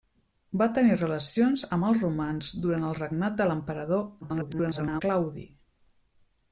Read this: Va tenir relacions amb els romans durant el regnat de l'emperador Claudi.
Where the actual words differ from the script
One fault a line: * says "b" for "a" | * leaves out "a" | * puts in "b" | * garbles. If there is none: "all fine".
* garbles